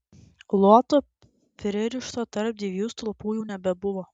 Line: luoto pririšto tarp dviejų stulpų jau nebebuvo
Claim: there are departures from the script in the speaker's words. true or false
false